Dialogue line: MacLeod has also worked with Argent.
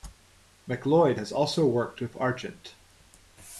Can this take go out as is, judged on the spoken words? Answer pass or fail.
pass